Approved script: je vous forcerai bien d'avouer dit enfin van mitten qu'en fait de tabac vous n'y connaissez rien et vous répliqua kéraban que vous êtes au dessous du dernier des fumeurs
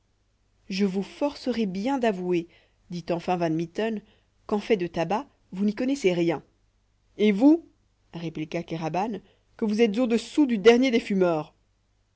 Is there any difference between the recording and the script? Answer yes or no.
no